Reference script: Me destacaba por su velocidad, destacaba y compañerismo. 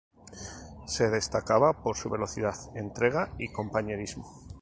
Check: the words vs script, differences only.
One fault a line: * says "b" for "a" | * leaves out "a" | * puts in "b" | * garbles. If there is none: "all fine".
* says "Se" for "Me"
* says "entrega" for "destacaba"